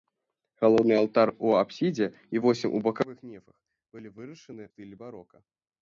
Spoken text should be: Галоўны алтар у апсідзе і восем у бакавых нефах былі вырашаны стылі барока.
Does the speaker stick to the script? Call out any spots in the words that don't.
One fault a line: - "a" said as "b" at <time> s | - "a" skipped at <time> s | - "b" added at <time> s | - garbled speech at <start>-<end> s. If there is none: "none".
none